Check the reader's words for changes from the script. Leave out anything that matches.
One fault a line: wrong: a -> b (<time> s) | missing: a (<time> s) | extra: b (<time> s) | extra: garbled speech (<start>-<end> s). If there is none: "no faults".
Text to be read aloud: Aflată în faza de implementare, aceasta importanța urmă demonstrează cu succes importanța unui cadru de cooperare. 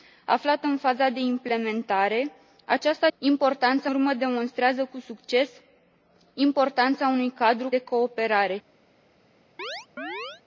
no faults